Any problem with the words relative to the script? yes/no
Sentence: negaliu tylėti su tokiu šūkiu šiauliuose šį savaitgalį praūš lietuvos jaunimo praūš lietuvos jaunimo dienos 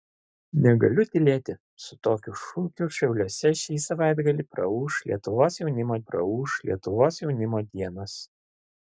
no